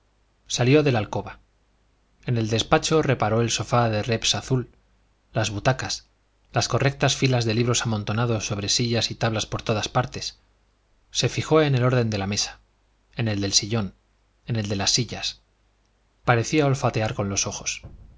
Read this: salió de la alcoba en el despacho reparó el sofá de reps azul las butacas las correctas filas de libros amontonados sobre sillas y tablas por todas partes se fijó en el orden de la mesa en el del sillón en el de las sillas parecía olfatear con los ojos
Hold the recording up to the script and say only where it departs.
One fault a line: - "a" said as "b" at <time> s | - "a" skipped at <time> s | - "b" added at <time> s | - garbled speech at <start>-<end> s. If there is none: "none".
none